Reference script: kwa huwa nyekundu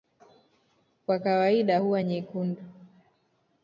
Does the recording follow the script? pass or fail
fail